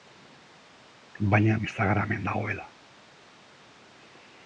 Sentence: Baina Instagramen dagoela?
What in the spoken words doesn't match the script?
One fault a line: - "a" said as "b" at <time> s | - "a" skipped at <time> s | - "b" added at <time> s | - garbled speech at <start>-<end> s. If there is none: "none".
none